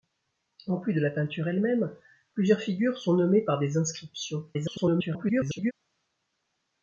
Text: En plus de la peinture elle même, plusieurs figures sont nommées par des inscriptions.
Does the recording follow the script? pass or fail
fail